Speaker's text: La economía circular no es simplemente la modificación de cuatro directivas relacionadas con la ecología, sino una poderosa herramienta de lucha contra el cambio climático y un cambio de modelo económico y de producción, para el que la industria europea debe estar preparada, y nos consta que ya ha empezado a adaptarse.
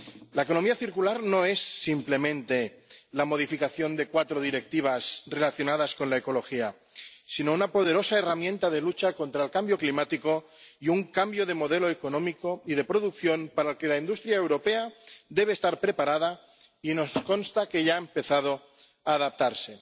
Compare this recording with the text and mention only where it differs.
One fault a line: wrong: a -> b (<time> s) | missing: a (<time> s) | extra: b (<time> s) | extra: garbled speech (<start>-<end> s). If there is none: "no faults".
no faults